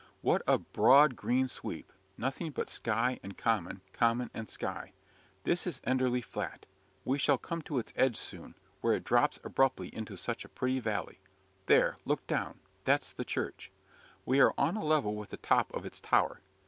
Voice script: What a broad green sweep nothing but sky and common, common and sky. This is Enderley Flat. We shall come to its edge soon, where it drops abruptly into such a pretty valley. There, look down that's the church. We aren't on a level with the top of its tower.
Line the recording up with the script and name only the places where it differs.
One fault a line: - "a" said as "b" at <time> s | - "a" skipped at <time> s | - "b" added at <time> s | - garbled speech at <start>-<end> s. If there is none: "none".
- "aren't" said as "are" at 14.4 s